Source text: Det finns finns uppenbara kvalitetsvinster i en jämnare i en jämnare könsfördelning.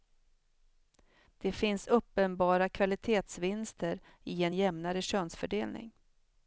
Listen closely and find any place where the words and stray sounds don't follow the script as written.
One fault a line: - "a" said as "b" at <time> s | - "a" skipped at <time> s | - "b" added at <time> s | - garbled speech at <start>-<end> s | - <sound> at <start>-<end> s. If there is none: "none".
- "finns" skipped at 1.9 s
- "i en jämnare" skipped at 5.0 s